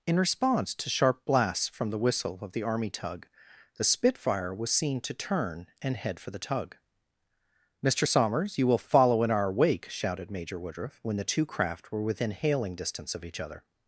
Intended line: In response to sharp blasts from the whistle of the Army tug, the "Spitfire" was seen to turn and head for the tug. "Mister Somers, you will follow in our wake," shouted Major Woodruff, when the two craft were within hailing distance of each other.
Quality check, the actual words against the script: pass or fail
pass